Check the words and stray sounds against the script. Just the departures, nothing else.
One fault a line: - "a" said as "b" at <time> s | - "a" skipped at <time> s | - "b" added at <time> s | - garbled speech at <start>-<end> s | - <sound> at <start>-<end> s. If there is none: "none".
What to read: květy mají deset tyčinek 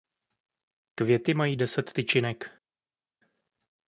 none